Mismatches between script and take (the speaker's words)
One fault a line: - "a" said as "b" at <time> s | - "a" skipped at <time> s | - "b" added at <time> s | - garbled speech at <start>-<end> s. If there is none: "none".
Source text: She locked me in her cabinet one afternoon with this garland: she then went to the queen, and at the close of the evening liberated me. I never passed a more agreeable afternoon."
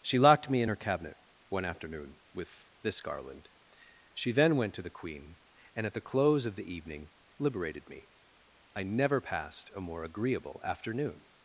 none